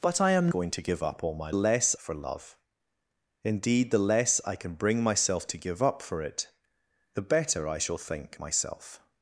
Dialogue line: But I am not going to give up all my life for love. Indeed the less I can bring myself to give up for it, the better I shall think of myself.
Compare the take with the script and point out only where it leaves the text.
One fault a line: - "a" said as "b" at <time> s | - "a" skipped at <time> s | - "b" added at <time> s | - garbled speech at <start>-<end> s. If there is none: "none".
- "not" skipped at 0.5 s
- "life" said as "less" at 1.5 s
- "of" skipped at 8.4 s